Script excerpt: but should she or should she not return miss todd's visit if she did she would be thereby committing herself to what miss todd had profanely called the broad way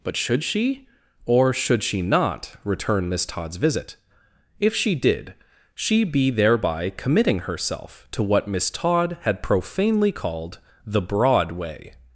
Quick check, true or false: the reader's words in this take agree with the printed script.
false